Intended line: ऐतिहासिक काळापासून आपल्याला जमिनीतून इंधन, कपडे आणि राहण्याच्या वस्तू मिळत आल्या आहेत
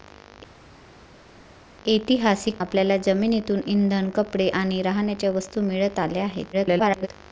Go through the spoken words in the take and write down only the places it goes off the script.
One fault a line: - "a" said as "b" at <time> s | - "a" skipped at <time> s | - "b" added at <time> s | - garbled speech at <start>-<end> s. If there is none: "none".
- "काळापासून" skipped at 2.6 s
- garbled speech at 6.5-7.1 s